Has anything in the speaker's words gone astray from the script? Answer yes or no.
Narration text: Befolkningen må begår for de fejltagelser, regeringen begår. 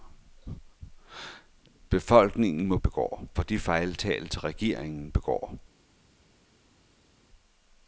no